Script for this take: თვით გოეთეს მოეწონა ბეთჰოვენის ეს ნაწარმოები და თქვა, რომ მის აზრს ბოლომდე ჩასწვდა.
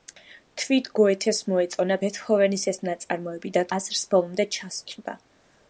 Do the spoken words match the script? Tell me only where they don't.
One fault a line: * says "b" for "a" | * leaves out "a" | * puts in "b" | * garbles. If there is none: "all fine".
* leaves out "თქვა რომ მის"